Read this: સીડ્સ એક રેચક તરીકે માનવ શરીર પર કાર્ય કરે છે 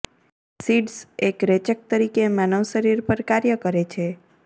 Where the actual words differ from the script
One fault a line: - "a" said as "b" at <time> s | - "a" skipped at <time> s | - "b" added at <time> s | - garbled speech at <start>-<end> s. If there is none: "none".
none